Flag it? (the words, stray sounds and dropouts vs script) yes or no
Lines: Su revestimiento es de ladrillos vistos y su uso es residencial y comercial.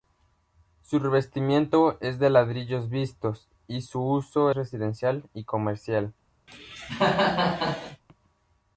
yes